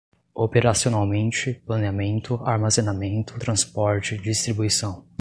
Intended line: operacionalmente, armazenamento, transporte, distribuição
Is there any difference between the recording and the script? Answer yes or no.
yes